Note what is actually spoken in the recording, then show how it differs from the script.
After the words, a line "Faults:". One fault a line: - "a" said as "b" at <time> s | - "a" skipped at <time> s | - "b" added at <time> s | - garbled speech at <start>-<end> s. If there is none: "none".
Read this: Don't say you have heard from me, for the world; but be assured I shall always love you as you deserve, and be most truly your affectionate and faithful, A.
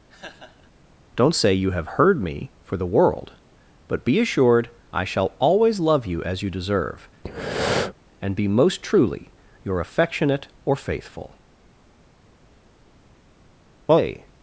Don't say you have heard me, for the world; but be assured I shall always love you as you deserve, and be most truly your affectionate or faithful, A.
Faults:
- "from" skipped at 2.2 s
- "and" said as "or" at 10.6 s